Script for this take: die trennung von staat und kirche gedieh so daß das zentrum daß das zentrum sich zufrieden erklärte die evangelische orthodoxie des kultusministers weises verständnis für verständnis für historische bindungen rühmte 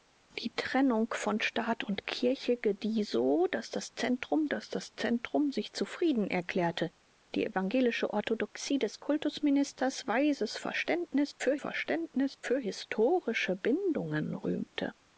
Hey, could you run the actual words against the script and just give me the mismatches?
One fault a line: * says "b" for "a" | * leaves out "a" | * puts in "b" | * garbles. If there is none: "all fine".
all fine